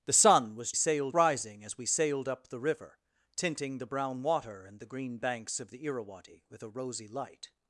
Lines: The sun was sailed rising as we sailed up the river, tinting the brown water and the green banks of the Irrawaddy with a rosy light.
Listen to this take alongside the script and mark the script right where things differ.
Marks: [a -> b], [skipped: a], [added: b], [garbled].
The sun was sailed rising as we sailed up the river, tinting the brown water and the green banks of the Irrawaddy with a rosy light.